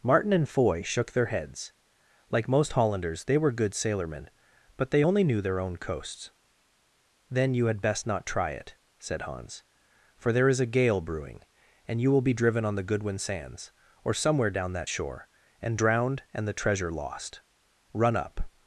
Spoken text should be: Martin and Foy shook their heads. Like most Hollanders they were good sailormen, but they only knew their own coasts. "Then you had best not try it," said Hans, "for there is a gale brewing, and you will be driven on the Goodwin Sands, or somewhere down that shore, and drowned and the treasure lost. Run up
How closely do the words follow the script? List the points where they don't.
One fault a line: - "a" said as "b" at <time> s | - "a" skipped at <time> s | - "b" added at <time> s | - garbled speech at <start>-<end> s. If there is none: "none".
none